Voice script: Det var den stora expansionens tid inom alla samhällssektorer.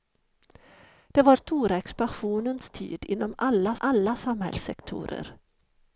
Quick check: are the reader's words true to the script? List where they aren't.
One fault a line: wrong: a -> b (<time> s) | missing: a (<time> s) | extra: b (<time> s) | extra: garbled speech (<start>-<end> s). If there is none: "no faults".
missing: den (1.4 s)
extra: alla (3.8 s)